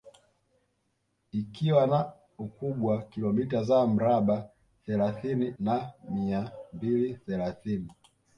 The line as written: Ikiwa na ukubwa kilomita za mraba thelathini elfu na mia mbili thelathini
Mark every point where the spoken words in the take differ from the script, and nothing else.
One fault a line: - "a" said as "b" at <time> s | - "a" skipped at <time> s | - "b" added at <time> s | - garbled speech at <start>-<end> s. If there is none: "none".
- "elfu" skipped at 5.5 s